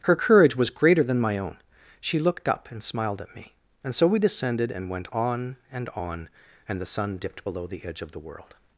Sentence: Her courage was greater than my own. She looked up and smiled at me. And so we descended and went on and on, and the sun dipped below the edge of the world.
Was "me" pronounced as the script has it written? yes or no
yes